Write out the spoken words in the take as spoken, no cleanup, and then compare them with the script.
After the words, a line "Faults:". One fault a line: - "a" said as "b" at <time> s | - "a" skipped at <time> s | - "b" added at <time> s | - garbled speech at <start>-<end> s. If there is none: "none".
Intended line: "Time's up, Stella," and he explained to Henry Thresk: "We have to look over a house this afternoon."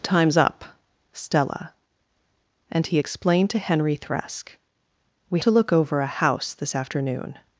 "Time's up, Stella," and he explained to Henry Thresk: "We to look over a house this afternoon."
Faults:
- "have" skipped at 5.4 s